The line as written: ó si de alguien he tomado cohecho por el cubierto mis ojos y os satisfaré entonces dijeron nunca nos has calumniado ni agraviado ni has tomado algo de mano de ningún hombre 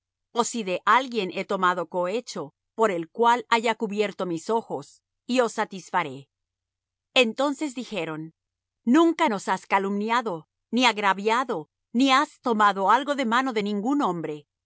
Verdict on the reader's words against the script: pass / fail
fail